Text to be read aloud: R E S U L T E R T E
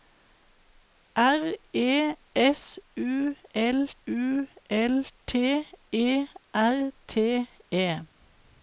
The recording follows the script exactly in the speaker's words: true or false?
false